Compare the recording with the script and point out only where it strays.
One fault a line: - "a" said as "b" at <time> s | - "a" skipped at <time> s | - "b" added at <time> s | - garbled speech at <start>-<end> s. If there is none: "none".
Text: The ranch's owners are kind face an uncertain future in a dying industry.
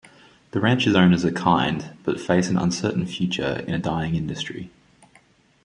- "but" added at 2.0 s